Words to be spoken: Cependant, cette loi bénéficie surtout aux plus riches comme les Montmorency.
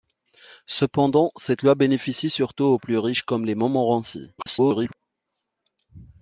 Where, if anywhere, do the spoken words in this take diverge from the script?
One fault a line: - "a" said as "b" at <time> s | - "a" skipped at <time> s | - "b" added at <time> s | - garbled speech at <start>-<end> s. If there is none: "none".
- garbled speech at 4.4-5.0 s